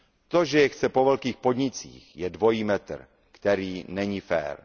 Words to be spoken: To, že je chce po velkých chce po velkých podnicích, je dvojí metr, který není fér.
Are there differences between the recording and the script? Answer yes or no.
yes